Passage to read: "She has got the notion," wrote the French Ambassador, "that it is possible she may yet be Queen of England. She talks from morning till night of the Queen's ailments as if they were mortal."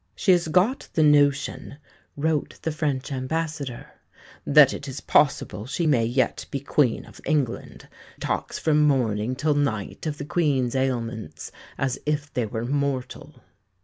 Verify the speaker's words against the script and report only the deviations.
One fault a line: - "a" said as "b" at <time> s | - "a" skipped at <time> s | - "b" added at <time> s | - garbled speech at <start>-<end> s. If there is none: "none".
- "She" skipped at 7.9 s